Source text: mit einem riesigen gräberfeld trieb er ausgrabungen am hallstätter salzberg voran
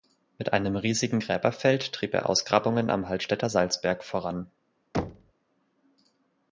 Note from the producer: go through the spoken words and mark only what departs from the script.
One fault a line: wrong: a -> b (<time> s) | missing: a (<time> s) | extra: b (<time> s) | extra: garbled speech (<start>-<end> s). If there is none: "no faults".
no faults